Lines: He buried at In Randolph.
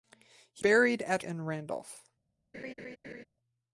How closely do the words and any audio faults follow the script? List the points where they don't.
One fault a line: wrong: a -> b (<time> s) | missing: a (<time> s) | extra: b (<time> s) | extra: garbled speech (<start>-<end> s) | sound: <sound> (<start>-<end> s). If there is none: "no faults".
sound: laugh (2.5-3.2 s)